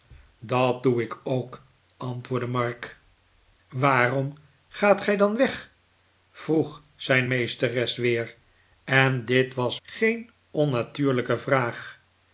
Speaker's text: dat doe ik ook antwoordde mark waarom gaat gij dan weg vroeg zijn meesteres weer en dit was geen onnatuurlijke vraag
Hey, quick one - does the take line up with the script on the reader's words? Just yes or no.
yes